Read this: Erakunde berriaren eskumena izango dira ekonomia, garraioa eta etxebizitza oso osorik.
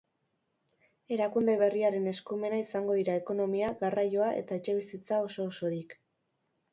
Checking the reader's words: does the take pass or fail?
pass